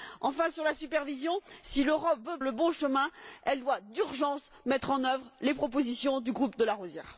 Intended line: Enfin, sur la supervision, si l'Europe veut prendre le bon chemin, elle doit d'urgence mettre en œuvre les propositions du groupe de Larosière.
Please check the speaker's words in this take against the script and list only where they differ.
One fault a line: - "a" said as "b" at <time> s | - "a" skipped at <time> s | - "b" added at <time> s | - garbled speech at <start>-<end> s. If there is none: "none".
- "prendre" skipped at 2.4 s